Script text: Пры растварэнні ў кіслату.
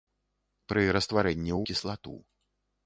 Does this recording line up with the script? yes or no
yes